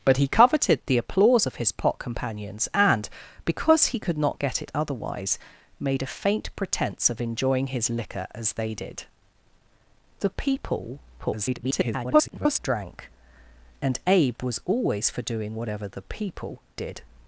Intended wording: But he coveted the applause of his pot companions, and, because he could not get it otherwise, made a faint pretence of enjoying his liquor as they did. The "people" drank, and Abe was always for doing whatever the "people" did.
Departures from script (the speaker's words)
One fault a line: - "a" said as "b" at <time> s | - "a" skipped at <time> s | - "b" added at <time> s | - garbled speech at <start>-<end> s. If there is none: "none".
- garbled speech at 11.2-12.6 s